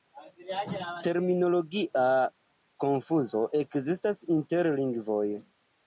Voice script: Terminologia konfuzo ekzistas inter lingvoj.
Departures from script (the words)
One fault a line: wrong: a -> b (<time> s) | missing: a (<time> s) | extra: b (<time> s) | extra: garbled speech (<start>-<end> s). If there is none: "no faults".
no faults